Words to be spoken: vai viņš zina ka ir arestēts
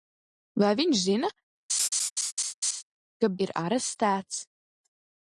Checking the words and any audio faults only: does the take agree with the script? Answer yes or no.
no